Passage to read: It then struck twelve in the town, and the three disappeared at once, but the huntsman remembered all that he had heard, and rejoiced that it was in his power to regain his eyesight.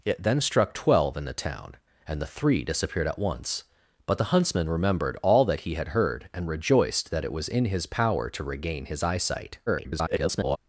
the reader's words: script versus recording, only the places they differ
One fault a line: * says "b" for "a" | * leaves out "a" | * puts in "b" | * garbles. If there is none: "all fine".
* garbles